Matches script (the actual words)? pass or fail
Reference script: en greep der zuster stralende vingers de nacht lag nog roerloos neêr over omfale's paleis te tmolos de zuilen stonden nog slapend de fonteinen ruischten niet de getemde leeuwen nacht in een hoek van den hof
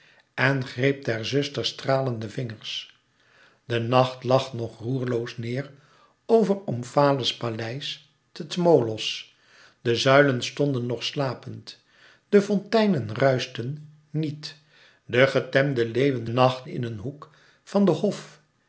pass